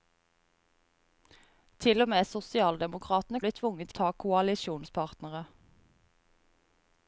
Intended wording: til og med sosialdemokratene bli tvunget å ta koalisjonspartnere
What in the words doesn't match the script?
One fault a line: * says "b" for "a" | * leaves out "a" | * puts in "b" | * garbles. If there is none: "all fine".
all fine